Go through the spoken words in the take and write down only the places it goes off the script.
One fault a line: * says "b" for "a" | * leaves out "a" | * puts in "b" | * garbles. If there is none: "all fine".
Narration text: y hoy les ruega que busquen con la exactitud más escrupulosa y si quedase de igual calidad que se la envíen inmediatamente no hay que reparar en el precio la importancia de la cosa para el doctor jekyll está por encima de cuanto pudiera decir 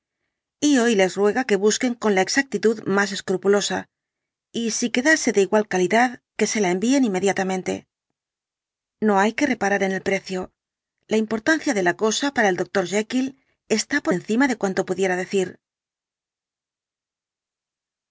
all fine